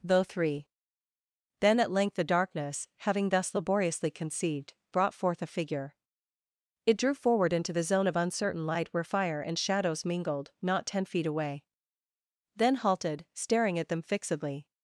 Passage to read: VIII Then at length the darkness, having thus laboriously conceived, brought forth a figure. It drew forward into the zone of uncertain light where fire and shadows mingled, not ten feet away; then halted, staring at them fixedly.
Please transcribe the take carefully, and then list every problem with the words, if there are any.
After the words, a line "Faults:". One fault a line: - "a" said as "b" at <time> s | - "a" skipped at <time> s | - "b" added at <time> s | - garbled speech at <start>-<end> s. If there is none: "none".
Though three Then at length the darkness, having thus laboriously conceived, brought forth a figure. It drew forward into the zone of uncertain light where fire and shadows mingled, not ten feet away; then halted, staring at them fixedly.
Faults:
- "VIII" said as "Though three" at 0.0 s